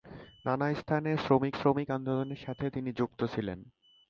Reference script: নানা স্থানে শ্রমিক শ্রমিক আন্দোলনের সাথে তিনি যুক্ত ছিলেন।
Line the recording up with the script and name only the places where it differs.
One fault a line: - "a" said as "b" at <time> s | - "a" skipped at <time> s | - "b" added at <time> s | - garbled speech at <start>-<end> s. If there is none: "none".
none